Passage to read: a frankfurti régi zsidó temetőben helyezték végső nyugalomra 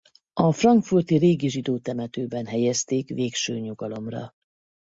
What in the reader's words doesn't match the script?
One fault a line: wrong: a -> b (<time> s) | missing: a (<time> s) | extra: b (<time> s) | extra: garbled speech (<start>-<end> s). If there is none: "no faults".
no faults